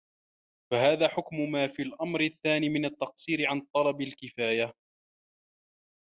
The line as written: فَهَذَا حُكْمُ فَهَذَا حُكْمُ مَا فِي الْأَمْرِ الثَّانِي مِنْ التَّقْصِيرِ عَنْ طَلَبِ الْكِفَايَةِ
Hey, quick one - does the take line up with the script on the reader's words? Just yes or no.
no